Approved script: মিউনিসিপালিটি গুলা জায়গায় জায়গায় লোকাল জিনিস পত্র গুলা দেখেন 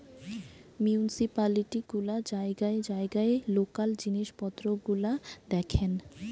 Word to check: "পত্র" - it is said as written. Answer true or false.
true